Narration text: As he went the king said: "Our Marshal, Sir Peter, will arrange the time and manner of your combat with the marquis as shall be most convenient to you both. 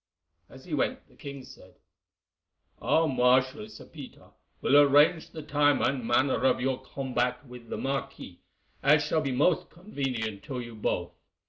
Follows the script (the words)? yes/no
yes